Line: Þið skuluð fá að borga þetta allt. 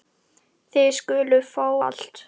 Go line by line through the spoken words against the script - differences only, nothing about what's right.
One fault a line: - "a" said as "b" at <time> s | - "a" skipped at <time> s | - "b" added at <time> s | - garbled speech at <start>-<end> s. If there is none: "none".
- "að borga þetta" skipped at 1.7 s